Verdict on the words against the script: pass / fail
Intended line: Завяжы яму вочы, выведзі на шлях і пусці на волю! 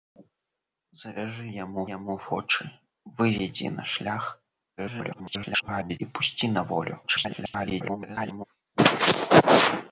fail